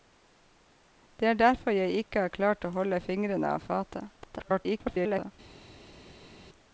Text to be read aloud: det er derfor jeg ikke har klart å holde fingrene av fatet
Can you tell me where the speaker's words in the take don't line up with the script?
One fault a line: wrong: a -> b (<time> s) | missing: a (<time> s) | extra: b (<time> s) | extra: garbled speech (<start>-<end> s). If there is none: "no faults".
extra: garbled speech (4.2-5.3 s)